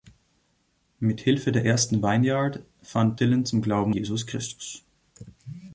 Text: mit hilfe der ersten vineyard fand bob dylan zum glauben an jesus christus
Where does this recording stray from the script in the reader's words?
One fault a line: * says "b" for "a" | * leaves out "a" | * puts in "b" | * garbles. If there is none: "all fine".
* leaves out "bob"
* leaves out "an"